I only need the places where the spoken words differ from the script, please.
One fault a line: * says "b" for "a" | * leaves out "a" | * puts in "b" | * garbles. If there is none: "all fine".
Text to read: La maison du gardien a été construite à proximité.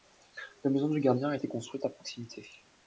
all fine